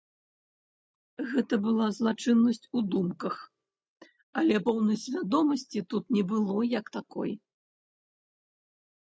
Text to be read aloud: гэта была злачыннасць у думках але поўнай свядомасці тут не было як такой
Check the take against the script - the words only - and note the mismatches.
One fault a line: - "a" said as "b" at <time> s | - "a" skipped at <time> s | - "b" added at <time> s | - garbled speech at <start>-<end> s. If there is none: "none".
none